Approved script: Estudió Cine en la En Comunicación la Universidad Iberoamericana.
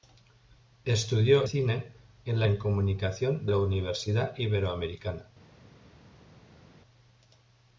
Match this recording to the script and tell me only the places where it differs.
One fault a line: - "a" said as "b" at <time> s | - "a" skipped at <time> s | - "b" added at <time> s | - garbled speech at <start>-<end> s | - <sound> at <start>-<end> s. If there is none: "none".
none